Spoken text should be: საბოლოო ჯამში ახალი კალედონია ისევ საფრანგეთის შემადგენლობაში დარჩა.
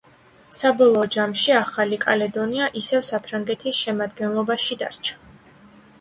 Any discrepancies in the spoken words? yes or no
no